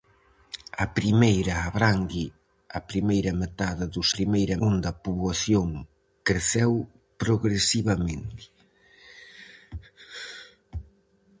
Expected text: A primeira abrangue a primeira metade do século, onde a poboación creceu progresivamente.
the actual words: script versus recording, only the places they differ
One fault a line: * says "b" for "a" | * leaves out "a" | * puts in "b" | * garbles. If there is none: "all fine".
* says "primeira" for "século"